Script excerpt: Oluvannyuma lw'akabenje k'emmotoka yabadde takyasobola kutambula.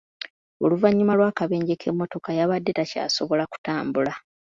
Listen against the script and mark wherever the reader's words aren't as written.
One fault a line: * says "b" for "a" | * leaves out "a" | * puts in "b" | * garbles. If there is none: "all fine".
all fine